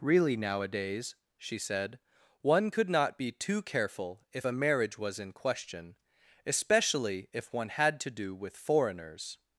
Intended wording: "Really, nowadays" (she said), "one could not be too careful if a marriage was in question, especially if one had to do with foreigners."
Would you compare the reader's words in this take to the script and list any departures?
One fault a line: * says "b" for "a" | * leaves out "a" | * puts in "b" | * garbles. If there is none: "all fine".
all fine